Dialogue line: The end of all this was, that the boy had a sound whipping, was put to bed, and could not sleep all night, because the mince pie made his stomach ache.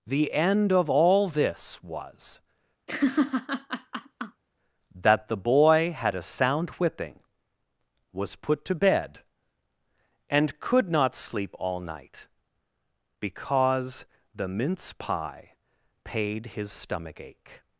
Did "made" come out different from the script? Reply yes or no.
yes